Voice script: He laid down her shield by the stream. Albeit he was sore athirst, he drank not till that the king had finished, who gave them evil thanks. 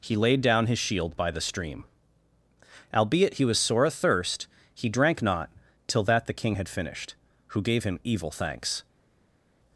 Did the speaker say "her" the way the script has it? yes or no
no